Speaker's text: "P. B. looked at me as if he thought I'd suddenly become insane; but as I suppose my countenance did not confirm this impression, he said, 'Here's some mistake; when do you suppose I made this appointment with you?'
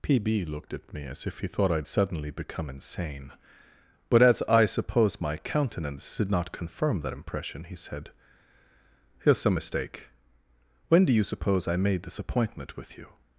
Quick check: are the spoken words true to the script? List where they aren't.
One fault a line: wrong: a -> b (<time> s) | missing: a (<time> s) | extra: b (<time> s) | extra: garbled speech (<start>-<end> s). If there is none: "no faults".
wrong: this -> that (7.0 s)